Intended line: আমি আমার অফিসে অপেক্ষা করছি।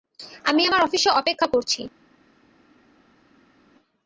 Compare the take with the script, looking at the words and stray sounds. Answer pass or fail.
pass